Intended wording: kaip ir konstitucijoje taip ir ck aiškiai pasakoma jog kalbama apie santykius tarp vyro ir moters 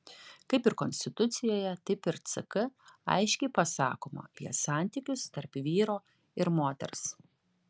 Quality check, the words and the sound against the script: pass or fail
fail